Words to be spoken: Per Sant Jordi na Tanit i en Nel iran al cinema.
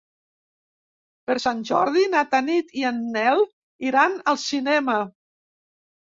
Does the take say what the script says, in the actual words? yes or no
yes